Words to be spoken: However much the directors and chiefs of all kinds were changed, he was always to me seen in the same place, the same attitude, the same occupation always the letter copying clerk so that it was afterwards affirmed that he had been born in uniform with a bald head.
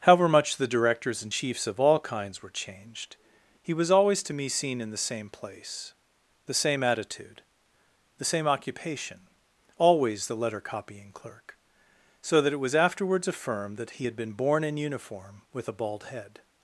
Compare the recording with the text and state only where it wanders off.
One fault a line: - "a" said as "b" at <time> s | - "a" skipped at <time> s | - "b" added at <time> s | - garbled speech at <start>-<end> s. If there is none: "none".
none